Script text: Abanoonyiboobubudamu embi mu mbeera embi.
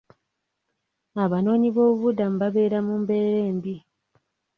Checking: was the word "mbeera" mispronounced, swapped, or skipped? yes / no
no